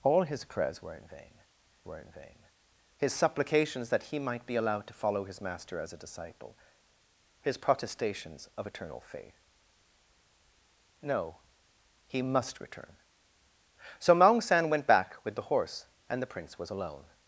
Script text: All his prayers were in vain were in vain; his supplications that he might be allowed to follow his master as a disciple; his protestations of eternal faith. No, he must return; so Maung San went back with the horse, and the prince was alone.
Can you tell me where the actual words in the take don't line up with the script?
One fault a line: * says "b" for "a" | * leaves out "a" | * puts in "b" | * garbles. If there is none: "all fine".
all fine